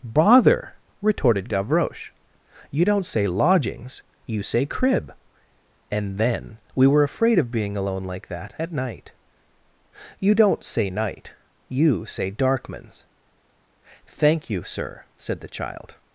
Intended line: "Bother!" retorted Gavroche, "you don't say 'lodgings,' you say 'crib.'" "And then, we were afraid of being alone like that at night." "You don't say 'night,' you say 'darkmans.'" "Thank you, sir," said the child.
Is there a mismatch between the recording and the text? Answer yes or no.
no